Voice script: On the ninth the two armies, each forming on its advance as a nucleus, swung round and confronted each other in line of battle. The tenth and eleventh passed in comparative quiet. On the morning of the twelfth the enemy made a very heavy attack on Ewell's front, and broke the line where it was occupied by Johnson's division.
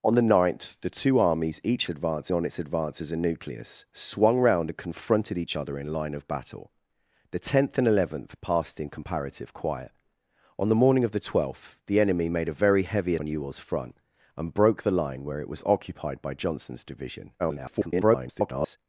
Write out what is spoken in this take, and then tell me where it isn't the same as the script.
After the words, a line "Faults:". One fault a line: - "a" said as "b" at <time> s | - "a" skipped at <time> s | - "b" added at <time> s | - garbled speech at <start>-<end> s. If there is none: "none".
On the ninth the two armies, each advance on its advance as a nucleus, swung round and confronted each other in line of battle. The tenth and eleventh passed in comparative quiet. On the morning of the twelfth the enemy made a very heavy on Ewell's front, and broke the line where it was occupied by Johnson's division. [garbled]
Faults:
- "forming" said as "advance" at 1.9 s
- "attack" skipped at 13.2 s
- garbled speech at 17.4-18.8 s